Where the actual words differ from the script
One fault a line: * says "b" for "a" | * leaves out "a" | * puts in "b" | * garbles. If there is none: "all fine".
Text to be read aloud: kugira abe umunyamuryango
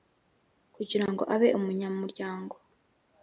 * puts in "ngo"